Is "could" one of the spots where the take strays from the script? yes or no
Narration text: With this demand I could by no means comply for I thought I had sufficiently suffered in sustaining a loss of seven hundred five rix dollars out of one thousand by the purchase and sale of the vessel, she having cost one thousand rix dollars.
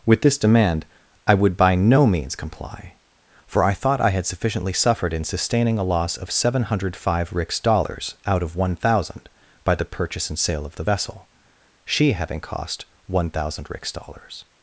yes